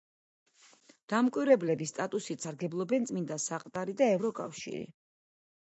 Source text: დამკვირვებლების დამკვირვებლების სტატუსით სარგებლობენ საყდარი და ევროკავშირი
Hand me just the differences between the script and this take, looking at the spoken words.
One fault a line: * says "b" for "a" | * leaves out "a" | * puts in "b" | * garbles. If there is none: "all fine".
* leaves out "დამკვირვებლების"
* puts in "წმინდა"